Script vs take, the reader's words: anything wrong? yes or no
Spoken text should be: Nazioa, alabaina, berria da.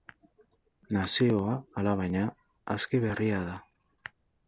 yes